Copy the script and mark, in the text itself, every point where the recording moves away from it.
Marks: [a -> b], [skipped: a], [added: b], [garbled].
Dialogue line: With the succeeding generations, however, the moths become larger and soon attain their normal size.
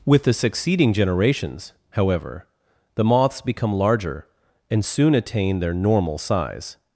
With the succeeding generations, however, the moths become larger and soon attain their normal size.